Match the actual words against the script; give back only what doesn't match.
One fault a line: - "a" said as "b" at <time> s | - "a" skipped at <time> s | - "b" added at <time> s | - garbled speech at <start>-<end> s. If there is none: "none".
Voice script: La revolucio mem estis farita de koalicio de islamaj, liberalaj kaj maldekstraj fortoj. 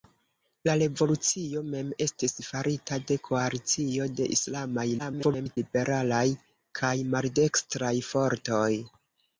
- garbled speech at 5.0-5.6 s